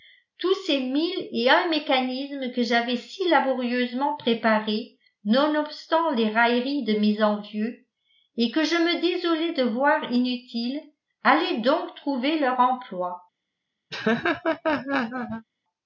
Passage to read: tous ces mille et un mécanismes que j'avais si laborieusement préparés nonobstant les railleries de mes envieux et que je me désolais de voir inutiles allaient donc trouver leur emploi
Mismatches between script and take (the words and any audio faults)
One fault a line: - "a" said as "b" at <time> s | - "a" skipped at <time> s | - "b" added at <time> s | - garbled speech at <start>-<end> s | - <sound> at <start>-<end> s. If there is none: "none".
- laugh at 13.9-15.5 s